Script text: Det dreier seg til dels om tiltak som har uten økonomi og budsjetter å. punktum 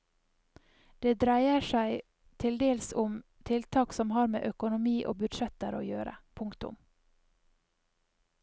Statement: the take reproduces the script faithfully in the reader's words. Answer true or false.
false